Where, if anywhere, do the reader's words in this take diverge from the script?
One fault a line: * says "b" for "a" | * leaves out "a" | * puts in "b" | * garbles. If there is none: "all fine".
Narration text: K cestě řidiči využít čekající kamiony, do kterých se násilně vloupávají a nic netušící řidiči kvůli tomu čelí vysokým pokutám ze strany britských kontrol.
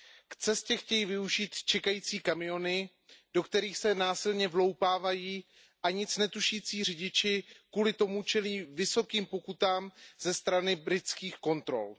* says "chtějí" for "řidiči"